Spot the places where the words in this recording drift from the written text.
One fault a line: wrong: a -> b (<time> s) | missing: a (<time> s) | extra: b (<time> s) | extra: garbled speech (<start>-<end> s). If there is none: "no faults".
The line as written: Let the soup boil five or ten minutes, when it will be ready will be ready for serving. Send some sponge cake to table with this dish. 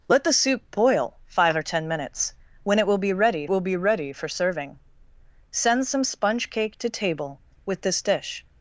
no faults